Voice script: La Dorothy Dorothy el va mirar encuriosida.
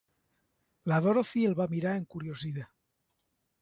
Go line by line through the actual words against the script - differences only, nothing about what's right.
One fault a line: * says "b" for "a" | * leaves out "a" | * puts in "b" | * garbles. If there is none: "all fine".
* leaves out "Dorothy"